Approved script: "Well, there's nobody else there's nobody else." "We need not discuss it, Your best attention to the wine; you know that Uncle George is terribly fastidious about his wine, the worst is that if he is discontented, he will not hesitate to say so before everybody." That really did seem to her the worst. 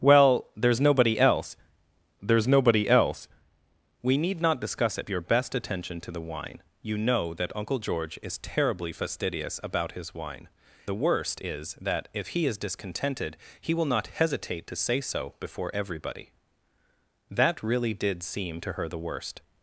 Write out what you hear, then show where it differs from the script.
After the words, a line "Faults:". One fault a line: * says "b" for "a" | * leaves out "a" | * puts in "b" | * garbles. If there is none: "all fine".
"Well, there's nobody else there's nobody else." "We need not discuss it, Your best attention to the wine; you know that Uncle George is terribly fastidious about his wine, the worst is that if he is discontented, he will not hesitate to say so before everybody." That really did seem to her the worst.
Faults:
all fine